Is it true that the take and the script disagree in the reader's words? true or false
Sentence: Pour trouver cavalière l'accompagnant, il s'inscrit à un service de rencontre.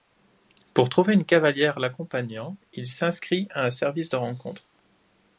true